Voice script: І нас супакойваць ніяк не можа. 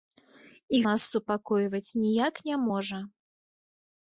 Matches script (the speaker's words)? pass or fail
pass